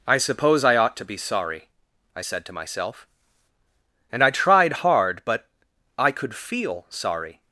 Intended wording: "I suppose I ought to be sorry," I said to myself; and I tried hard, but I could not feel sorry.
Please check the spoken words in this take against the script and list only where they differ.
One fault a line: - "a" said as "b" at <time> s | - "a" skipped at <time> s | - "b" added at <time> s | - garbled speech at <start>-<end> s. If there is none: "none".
- "not" skipped at 6.3 s